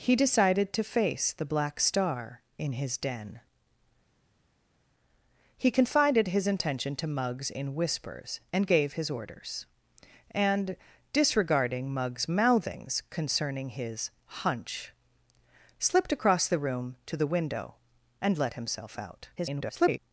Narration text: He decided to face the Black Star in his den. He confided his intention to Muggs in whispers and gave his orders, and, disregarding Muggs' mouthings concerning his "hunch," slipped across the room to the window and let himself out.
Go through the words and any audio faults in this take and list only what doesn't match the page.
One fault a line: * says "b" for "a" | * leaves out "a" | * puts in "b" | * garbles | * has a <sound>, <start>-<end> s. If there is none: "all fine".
* garbles